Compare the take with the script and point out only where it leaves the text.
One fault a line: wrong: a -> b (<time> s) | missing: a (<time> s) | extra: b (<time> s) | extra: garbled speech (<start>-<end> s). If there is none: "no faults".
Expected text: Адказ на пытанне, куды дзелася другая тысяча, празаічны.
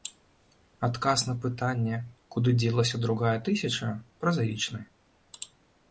no faults